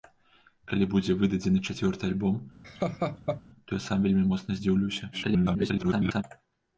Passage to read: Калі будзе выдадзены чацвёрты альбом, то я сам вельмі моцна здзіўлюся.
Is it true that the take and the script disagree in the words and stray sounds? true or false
true